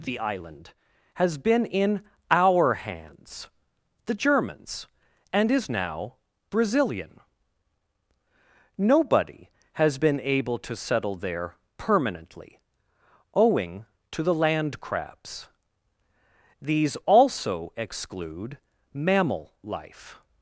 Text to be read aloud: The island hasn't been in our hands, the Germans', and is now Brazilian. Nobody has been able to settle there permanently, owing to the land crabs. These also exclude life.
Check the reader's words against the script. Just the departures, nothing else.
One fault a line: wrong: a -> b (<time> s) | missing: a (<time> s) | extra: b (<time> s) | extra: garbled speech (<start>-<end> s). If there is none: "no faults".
wrong: hasn't -> has (1.1 s)
extra: mammal (18.9 s)